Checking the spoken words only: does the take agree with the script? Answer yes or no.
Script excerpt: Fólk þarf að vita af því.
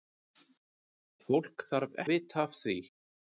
yes